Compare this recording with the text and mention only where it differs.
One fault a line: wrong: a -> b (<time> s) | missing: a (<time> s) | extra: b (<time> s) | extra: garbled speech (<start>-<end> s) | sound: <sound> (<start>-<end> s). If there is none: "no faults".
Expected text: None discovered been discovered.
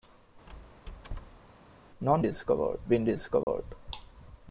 sound: squeak (0.5-1.5 s)
sound: dropout (3.4-3.5 s)